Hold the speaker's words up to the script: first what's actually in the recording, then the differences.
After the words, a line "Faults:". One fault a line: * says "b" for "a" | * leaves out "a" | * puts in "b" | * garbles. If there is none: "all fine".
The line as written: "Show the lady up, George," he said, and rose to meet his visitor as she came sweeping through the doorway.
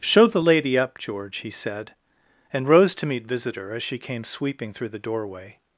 "Show the lady up, George," he said, and rose to meet visitor as she came sweeping through the doorway.
Faults:
* leaves out "his"